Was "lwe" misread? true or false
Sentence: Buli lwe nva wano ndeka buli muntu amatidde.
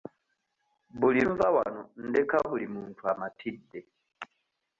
true